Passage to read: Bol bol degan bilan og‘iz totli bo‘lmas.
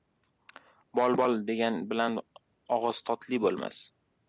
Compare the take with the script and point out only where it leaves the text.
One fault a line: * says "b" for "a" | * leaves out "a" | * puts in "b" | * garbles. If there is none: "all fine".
all fine